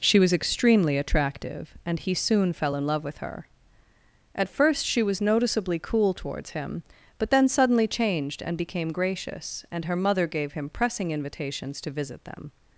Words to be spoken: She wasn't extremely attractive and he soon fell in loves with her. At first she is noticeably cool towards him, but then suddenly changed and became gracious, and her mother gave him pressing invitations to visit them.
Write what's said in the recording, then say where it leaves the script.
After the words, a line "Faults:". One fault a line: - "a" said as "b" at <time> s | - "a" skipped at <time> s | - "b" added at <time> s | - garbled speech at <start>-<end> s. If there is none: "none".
She was extremely attractive and he soon fell in love with her. At first she was noticeably cool towards him, but then suddenly changed and became gracious, and her mother gave him pressing invitations to visit them.
Faults:
- "wasn't" said as "was" at 0.2 s
- "loves" said as "love" at 2.9 s
- "is" said as "was" at 5.0 s